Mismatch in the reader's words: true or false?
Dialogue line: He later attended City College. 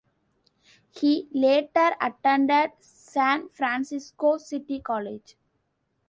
true